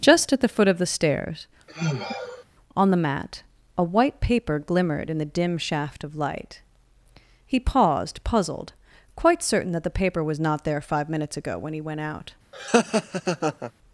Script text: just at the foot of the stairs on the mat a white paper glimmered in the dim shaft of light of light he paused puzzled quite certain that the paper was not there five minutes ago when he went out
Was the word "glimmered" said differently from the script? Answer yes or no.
no